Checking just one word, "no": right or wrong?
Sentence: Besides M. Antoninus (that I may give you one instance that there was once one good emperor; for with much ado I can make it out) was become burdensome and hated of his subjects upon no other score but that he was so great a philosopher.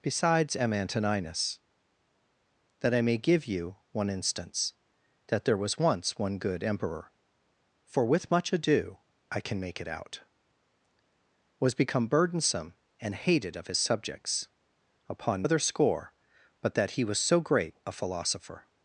wrong